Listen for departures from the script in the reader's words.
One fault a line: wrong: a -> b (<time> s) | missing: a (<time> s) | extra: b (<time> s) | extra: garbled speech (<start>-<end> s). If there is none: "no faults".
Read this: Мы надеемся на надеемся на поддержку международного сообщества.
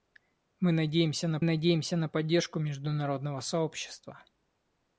no faults